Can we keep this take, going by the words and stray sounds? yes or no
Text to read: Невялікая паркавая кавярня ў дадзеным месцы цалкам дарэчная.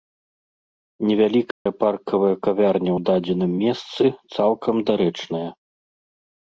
no